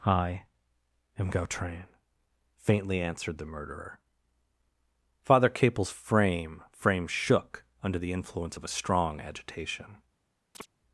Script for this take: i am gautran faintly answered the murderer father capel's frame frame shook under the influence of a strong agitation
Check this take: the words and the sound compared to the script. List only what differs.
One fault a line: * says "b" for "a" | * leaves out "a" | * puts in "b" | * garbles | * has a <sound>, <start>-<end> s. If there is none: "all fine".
* has a chirp, 10.5-10.7 s